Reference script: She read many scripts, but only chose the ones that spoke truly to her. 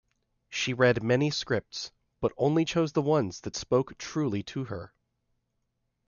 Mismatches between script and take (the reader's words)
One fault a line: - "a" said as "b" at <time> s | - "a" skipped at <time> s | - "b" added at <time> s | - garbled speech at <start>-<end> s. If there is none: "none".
none